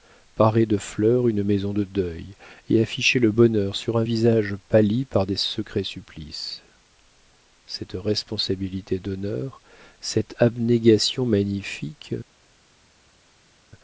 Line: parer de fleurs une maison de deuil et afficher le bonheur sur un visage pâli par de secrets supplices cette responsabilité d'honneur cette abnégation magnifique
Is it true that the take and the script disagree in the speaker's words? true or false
false